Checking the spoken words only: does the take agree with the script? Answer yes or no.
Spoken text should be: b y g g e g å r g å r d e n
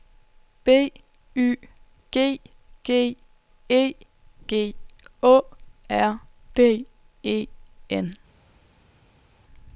no